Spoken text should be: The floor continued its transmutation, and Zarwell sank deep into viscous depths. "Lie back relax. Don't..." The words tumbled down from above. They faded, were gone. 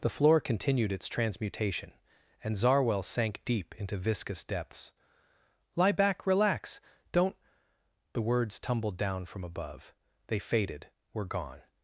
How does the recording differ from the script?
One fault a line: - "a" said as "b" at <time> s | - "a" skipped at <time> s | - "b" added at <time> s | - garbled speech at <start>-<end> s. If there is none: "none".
none